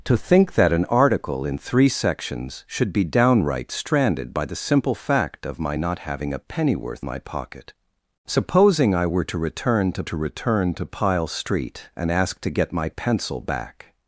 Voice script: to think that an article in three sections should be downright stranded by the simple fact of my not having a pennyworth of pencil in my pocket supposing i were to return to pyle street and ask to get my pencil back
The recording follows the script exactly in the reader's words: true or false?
false